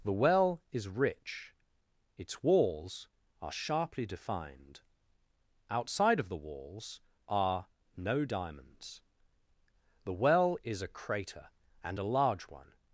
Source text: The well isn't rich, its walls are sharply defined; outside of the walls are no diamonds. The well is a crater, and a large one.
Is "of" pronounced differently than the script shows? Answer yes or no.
no